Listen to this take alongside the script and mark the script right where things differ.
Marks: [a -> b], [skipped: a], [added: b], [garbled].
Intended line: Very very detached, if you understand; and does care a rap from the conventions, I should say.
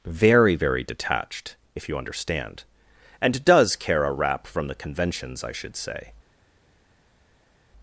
Very very detached, if you understand; and does care a rap from the conventions, I should say.